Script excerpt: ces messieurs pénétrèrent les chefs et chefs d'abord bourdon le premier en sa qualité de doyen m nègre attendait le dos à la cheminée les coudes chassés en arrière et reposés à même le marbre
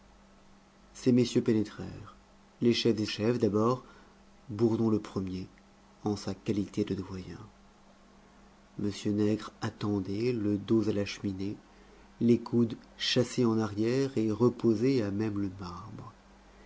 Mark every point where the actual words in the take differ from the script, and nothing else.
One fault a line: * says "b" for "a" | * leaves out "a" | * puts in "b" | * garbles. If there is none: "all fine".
all fine